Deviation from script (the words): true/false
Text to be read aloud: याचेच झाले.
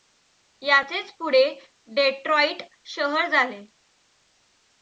true